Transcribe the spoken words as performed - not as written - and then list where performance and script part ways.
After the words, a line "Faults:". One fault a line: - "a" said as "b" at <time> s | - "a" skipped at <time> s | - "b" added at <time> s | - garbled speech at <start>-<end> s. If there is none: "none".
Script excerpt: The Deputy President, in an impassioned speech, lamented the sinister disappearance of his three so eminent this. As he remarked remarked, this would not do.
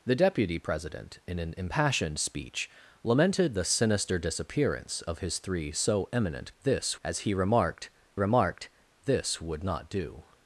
The Deputy President, in an impassioned speech, lamented the sinister disappearance of his three so eminent this. As he remarked remarked, this would not do.
Faults:
none